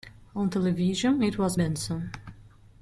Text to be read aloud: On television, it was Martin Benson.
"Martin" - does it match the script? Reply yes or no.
no